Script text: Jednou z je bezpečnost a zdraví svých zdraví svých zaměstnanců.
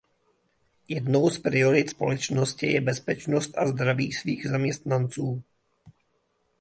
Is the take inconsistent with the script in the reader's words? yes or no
yes